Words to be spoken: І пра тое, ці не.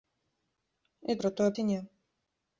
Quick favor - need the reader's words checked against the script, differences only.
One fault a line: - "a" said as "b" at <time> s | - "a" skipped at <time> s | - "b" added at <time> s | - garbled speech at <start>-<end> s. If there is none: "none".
none